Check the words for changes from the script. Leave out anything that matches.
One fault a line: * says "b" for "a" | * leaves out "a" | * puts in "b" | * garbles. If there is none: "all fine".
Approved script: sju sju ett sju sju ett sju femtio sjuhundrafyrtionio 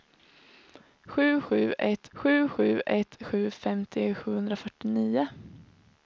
all fine